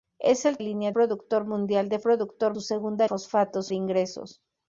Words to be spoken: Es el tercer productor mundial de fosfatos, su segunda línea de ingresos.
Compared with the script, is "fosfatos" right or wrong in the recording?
wrong